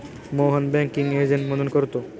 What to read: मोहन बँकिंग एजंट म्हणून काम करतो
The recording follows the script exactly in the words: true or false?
false